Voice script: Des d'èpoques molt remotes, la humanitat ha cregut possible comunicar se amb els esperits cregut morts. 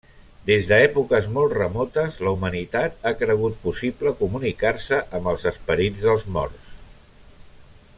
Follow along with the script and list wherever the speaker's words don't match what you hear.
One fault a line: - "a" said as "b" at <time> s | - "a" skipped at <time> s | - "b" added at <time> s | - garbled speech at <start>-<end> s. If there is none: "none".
- "cregut" said as "dels" at 6.1 s